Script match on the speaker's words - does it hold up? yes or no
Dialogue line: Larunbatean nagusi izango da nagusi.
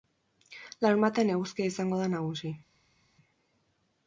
no